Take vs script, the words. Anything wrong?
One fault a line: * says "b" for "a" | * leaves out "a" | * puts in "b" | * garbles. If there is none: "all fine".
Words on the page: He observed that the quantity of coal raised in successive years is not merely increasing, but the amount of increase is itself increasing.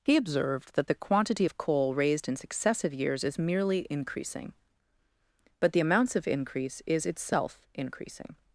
* leaves out "not"
* says "amounts" for "amount"